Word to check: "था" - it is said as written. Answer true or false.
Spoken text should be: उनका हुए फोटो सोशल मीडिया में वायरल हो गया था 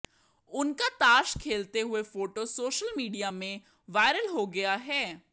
false